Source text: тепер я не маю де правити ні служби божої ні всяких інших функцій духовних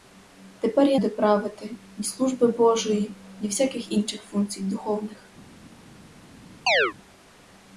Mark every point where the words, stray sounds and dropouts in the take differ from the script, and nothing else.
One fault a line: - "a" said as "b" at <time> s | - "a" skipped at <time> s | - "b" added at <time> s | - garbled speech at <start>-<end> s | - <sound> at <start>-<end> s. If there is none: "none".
- "не маю" skipped at 1.0 s
- chirp at 6.7-6.9 s